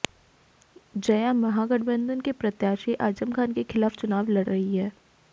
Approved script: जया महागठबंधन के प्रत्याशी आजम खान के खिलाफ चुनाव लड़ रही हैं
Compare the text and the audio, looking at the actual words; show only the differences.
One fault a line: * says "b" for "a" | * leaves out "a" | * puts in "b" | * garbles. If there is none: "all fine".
all fine